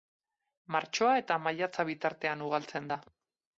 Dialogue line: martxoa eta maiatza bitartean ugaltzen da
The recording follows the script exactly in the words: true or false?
true